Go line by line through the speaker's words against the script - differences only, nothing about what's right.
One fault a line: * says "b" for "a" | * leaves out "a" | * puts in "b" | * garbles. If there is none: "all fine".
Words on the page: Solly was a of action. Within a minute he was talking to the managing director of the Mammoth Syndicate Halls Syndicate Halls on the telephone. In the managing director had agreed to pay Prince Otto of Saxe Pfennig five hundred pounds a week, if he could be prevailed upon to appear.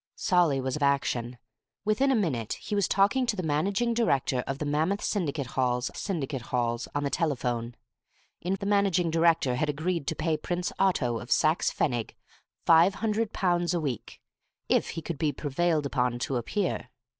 all fine